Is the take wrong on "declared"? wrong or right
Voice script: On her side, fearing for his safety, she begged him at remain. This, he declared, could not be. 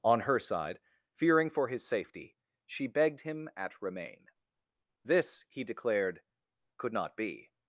right